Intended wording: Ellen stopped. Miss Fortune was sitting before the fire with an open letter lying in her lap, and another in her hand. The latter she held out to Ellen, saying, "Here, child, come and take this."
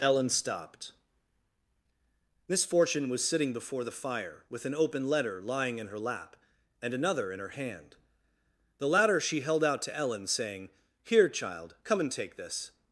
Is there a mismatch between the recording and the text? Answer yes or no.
no